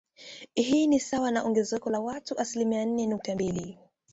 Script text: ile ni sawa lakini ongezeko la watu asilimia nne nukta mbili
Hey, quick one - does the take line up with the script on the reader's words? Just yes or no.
no